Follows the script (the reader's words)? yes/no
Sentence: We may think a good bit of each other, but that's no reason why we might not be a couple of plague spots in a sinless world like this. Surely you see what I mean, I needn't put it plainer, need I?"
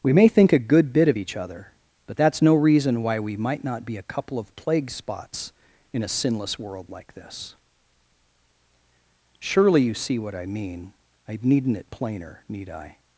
no